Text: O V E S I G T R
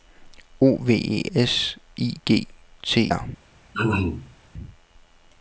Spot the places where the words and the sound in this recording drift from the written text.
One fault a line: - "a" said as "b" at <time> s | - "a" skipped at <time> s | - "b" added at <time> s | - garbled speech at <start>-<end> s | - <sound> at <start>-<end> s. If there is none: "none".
- throat clearing at 3.7-4.4 s